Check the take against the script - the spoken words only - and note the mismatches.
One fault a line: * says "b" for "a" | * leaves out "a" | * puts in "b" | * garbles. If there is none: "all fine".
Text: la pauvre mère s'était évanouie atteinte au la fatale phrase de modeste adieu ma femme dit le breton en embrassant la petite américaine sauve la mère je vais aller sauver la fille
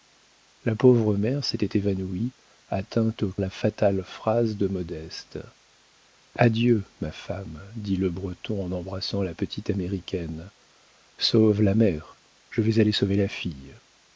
all fine